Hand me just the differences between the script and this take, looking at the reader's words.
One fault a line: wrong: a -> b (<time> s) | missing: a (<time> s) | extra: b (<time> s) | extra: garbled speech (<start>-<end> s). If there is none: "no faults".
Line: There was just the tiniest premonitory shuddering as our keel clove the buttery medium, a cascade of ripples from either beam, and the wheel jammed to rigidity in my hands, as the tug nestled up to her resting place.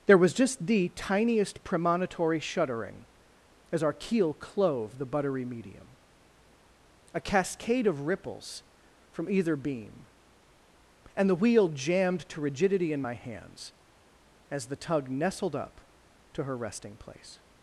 no faults